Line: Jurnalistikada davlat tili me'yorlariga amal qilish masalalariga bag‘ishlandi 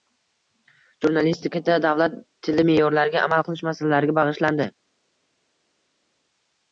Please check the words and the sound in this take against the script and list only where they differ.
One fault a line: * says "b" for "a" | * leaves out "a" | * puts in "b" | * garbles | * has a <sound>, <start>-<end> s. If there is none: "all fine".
all fine